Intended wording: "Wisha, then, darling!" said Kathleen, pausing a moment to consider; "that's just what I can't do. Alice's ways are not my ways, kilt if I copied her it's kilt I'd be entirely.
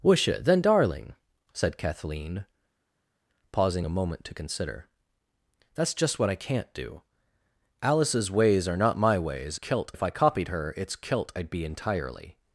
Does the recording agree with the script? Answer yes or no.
yes